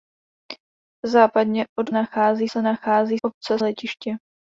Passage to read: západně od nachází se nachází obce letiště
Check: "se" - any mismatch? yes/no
no